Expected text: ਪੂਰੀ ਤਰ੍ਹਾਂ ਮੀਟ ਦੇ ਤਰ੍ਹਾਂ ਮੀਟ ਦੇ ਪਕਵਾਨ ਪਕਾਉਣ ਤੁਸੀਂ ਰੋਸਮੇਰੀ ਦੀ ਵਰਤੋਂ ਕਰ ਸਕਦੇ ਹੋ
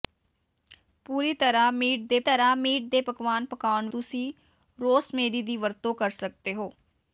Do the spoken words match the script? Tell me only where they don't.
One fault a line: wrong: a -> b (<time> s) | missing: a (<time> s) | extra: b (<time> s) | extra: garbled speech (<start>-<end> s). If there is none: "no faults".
no faults